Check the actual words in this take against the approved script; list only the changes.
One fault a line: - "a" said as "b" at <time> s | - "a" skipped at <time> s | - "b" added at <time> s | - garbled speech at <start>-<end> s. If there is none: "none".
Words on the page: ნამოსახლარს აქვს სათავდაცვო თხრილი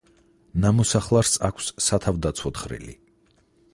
none